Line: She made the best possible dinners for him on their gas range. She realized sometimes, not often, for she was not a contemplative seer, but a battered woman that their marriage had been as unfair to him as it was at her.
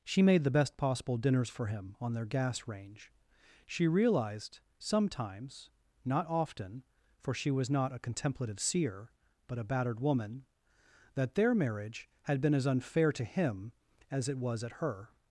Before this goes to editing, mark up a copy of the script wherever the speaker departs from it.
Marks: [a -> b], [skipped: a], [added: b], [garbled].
She made the best possible dinners for him on their gas range. She realized sometimes, not often, for she was not a contemplative seer, but a battered woman that their marriage had been as unfair to him as it was at her.